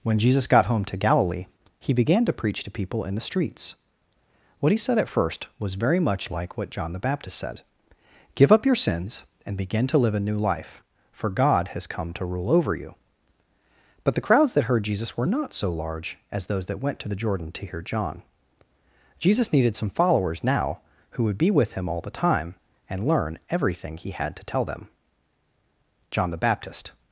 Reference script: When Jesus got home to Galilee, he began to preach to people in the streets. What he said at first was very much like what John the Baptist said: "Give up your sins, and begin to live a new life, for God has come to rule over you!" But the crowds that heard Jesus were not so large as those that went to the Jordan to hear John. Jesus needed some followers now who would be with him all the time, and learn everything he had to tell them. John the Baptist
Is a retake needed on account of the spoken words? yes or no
no